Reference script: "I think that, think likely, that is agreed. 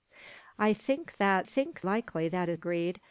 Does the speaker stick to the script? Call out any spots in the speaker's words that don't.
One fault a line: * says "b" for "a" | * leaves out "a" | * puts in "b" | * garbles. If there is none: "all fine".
all fine